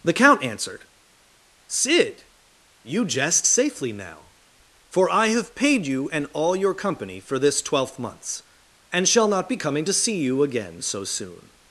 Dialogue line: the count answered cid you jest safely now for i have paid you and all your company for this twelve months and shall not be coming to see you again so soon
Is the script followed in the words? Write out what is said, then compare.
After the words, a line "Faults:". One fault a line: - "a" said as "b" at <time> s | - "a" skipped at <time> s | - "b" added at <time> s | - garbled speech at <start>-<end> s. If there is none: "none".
the count answered cid you jest safely now for i have paid you and all your company for this twelfth months and shall not be coming to see you again so soon
Faults:
- "twelve" said as "twelfth" at 7.6 s